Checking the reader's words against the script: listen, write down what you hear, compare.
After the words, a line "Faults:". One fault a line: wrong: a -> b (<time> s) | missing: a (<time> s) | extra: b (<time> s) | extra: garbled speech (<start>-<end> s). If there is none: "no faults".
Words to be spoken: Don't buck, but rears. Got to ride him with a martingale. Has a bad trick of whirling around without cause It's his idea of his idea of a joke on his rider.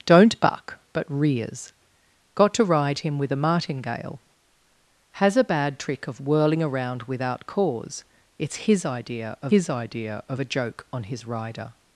Don't buck, but rears. Got to ride him with a martingale. Has a bad trick of whirling around without cause It's his idea of his idea of a joke on his rider.
Faults:
no faults